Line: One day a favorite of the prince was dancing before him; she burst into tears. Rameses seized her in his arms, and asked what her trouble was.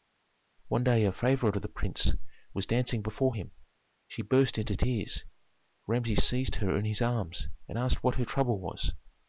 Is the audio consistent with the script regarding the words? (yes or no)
yes